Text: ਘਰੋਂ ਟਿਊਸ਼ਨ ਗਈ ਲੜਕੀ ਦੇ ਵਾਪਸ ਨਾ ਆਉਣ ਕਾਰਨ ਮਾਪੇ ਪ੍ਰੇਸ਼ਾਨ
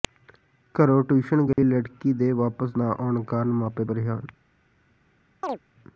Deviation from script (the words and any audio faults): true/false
true